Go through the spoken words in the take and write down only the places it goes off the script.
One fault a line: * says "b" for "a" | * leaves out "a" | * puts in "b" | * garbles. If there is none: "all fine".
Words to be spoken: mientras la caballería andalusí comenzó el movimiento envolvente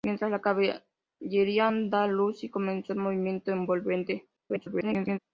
* garbles